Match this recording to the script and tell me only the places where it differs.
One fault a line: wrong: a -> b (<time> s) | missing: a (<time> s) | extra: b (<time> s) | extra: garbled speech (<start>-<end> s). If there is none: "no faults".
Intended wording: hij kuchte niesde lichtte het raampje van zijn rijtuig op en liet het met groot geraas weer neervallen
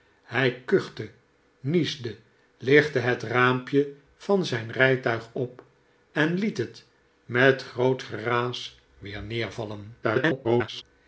extra: garbled speech (10.0-10.8 s)